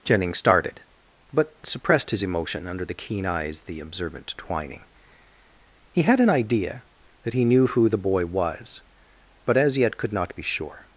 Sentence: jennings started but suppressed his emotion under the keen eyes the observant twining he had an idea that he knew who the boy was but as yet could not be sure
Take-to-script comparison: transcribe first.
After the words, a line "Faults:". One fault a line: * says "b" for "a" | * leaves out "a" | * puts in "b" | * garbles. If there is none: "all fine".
jennings started but suppressed his emotion under the keen eyes the observant twining he had an idea that he knew who the boy was but as yet could not be sure
Faults:
all fine